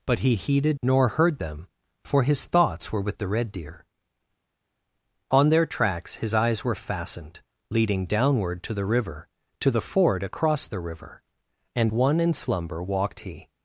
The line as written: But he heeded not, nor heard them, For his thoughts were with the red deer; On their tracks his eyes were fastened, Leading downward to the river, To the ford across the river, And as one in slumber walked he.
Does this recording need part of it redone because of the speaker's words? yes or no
yes